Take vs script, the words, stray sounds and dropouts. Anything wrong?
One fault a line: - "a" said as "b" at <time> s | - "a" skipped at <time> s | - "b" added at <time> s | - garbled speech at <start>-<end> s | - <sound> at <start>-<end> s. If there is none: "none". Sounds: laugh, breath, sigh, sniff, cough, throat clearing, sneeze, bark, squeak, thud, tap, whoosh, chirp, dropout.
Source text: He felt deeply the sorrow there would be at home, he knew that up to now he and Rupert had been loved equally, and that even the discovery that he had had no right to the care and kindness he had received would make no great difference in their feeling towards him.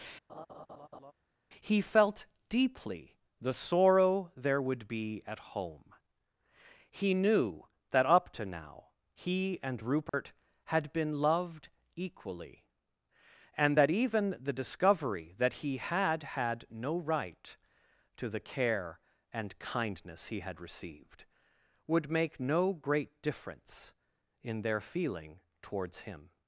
- laugh at 0.3-1.1 s
- dropout at 10.1-10.1 s